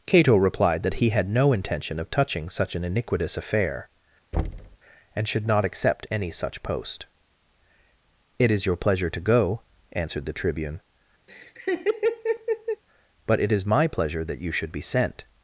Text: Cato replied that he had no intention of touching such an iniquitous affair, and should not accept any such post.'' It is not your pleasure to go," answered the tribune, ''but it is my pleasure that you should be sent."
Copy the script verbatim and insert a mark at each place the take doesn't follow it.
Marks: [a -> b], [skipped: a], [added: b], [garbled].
Cato replied that he had no intention of touching such an iniquitous affair, and should not accept any such post.'' It is [skipped: not] your pleasure to go," answered the tribune, ''but it is my pleasure that you should be sent."